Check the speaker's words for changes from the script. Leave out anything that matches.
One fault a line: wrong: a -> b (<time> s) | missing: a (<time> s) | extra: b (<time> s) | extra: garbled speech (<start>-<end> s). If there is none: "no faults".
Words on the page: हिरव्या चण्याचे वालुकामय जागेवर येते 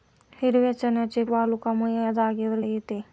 no faults